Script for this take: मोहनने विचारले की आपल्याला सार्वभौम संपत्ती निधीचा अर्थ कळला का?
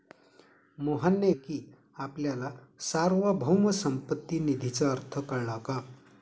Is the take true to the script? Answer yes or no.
no